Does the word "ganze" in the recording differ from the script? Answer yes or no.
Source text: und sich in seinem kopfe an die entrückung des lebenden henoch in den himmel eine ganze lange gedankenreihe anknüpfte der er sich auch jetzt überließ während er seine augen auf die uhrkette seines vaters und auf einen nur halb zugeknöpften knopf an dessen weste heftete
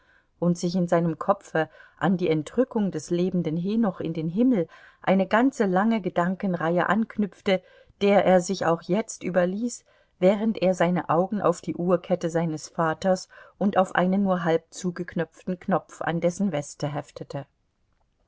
no